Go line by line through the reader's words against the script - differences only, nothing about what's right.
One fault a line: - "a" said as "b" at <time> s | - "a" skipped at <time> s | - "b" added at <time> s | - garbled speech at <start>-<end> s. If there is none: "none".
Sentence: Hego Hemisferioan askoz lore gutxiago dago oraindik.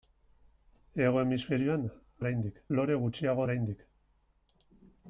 - "askoz" said as "oraindik" at 2.2 s
- "dago" skipped at 3.5 s